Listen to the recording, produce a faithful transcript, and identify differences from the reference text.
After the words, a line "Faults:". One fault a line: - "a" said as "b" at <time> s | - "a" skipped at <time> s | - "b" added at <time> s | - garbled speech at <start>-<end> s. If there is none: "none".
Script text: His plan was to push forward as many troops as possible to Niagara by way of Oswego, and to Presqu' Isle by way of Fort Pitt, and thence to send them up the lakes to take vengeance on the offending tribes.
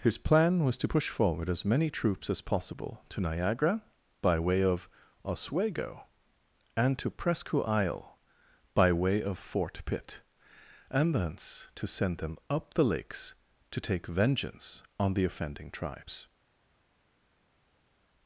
His plan was to push forward as many troops as possible to Niagara by way of Oswego, and to Presqu' Isle by way of Fort Pitt, and thence to send them up the lakes to take vengeance on the offending tribes.
Faults:
none